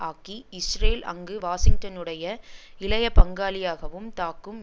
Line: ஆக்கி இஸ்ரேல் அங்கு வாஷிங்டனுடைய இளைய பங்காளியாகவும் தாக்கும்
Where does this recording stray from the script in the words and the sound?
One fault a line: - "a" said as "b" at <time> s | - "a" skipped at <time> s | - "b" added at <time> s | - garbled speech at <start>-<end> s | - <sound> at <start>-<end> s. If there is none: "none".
none